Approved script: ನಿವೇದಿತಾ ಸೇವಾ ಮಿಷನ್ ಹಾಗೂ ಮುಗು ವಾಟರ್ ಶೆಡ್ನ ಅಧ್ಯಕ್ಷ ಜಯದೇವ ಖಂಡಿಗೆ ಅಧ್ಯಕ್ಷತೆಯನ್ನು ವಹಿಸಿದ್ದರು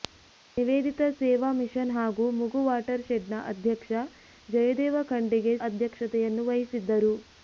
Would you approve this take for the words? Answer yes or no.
yes